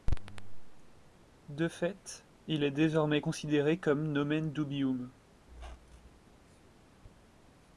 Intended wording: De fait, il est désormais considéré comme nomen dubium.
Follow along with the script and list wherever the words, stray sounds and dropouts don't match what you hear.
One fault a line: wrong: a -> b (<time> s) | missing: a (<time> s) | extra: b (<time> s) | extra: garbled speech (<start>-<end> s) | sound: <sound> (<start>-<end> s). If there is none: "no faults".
sound: squeak (5.5-6.2 s)